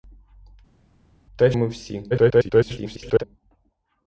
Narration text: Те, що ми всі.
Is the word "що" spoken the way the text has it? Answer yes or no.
no